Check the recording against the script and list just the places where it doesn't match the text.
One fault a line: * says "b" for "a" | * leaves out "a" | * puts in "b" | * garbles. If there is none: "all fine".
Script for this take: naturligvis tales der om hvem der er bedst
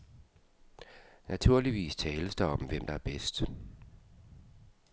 all fine